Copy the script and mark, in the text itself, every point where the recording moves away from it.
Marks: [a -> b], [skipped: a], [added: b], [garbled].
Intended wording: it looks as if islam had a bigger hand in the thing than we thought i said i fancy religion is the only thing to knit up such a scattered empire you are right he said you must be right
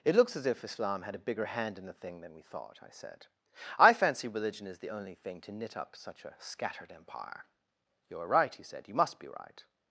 it looks as if islam had a bigger hand in the thing than we thought i said i fancy religion is the only thing to knit up such a scattered empire you are right he said you must be right